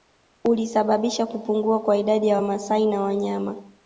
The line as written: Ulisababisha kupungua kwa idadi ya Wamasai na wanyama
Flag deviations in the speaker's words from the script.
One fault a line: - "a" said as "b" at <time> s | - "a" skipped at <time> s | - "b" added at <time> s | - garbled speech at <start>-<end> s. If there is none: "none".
none